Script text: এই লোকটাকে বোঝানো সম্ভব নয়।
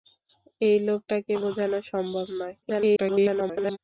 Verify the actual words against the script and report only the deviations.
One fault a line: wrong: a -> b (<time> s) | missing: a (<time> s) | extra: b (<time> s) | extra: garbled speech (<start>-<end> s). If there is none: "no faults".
extra: garbled speech (2.6-3.8 s)